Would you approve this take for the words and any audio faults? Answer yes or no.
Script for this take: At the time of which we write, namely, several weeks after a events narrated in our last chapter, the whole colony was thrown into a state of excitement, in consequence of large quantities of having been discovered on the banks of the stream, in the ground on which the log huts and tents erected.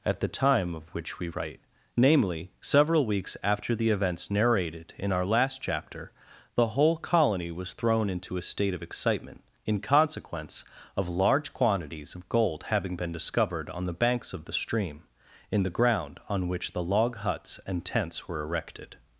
no